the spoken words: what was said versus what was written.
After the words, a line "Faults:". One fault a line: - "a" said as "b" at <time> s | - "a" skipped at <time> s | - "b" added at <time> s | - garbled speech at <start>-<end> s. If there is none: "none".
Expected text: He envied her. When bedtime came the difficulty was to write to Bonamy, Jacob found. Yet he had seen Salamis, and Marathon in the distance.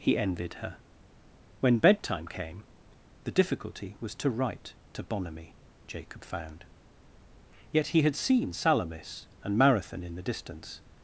He envied her. When bedtime came the difficulty was to write to Bonamy, Jacob found. Yet he had seen Salamis, and Marathon in the distance.
Faults:
none